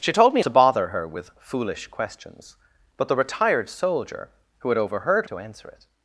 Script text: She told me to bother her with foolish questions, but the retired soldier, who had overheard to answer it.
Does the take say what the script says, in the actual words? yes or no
yes